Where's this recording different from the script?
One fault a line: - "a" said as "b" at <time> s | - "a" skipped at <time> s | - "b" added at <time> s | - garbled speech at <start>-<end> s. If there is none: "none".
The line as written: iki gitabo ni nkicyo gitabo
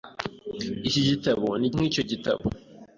none